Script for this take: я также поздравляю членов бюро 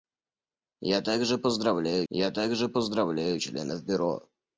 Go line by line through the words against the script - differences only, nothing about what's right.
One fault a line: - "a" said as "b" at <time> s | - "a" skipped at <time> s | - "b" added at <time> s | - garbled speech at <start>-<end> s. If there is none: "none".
- "я также поздравляю" added at 2.1 s